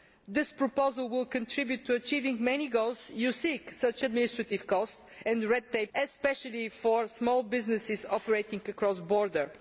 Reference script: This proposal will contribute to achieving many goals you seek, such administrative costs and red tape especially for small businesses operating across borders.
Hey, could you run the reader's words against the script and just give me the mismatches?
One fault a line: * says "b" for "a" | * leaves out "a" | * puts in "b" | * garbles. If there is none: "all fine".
all fine